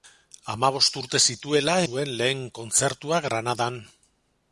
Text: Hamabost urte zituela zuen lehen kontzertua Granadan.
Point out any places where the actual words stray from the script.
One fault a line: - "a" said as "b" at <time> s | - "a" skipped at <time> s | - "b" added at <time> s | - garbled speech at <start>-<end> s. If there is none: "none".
none